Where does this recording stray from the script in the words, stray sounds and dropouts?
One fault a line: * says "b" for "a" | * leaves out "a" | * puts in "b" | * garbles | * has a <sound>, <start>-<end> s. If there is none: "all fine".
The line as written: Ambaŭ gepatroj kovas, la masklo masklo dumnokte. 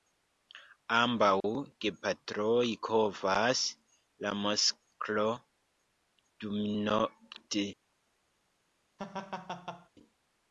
* leaves out "masklo"
* has a laugh, 9.0-9.9 s